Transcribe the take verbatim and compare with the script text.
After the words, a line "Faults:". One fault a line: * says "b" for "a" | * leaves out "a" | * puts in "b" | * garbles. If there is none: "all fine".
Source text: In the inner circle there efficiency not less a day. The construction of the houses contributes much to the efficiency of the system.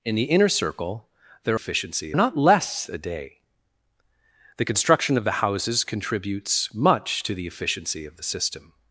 In the inner circle there efficiency not less a day. The construction of the houses contributes much to the efficiency of the system.
Faults:
all fine